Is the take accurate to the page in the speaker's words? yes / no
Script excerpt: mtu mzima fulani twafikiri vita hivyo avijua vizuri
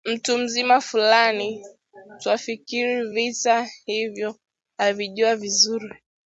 yes